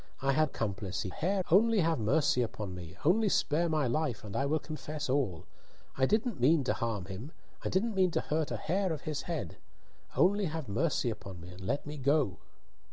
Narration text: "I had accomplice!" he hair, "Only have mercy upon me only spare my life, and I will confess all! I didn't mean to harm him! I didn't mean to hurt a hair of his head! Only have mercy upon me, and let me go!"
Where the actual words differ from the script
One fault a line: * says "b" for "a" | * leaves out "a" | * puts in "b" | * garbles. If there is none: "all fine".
all fine